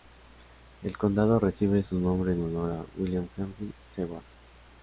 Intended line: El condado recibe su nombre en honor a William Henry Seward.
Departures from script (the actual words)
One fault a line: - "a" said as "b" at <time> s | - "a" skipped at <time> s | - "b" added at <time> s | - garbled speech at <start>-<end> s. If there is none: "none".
none